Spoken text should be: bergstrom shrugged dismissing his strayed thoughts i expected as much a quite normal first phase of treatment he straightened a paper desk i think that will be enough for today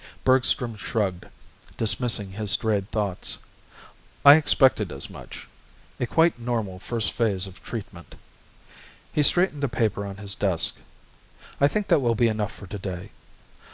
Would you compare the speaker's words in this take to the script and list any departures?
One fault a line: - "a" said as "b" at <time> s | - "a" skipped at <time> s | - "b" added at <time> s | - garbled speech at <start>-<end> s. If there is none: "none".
- "on his" added at 10.0 s